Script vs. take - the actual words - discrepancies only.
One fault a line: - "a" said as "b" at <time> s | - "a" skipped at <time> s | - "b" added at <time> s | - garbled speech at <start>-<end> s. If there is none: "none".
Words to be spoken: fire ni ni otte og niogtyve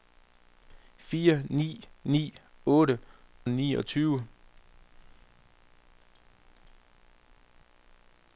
none